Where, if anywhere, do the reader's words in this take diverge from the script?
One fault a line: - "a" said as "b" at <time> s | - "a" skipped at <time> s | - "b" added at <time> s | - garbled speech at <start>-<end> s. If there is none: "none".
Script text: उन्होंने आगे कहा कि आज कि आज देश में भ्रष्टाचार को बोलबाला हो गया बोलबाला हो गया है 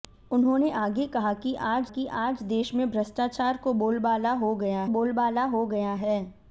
none